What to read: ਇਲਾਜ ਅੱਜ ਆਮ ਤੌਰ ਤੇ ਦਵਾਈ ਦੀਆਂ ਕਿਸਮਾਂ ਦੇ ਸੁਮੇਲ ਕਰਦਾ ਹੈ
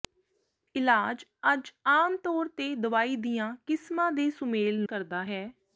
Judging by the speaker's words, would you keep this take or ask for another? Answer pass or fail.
pass